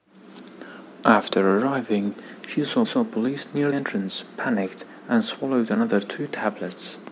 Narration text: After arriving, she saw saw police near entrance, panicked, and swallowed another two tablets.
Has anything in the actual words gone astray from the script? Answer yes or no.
no